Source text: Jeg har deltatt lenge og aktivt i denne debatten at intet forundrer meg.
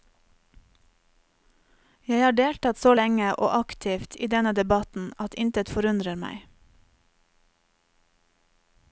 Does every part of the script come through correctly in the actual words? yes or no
no